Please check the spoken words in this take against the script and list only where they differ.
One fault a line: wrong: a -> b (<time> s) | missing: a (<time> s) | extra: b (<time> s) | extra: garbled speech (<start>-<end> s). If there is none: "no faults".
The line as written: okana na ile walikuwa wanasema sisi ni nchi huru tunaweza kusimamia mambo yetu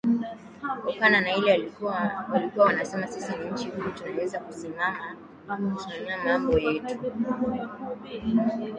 no faults